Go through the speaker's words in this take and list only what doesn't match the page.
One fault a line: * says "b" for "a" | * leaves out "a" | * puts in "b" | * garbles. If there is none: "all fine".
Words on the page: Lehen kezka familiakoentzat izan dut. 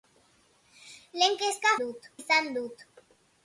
* says "dut" for "familiakoentzat"